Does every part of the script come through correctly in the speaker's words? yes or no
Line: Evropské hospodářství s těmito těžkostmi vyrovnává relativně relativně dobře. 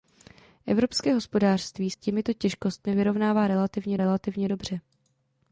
yes